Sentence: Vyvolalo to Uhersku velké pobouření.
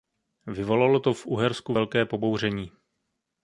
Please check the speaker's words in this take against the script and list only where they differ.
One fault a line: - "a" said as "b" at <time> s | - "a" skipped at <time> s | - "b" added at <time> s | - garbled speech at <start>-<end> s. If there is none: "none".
- "v" added at 1.1 s